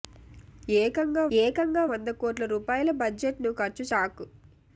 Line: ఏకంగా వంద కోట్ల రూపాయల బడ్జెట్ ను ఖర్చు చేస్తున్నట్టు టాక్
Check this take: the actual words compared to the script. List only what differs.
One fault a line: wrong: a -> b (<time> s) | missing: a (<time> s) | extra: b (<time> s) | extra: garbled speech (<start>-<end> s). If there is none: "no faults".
extra: ఏకంగా (1.4 s)
missing: చేస్తున్నట్టు (3.8 s)